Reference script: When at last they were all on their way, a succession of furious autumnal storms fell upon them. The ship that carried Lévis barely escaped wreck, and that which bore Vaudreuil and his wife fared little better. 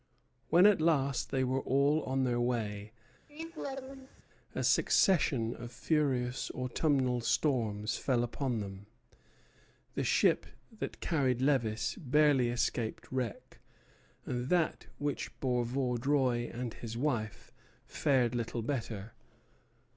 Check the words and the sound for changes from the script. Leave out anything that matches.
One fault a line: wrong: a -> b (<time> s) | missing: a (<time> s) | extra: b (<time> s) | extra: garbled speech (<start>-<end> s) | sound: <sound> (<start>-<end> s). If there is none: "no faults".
sound: laugh (3.3-4.2 s)